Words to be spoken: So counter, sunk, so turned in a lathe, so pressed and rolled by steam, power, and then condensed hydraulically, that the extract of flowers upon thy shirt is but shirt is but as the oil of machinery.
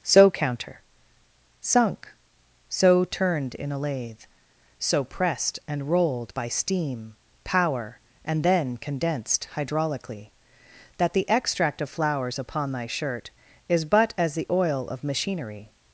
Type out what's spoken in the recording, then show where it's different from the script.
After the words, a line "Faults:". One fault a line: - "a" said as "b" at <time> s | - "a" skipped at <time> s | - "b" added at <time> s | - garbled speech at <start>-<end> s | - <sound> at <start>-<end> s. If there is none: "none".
So counter, sunk, so turned in a lathe, so pressed and rolled by steam, power, and then condensed hydraulically, that the extract of flowers upon thy shirt is but as the oil of machinery.
Faults:
- "shirt is but" skipped at 14.1 s